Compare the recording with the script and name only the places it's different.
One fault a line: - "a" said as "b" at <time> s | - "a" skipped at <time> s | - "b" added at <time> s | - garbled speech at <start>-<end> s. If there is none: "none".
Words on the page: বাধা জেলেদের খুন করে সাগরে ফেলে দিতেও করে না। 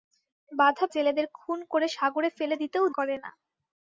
none